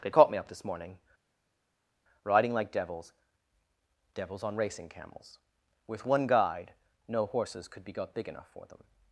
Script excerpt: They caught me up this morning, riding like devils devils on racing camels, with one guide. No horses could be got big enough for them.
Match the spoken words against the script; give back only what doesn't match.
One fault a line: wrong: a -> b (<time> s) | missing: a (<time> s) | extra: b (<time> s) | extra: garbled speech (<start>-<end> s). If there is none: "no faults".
no faults